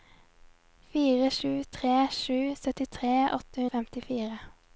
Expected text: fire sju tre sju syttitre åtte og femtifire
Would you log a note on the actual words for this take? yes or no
no